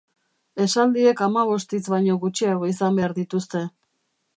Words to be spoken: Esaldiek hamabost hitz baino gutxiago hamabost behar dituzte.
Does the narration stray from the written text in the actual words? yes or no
yes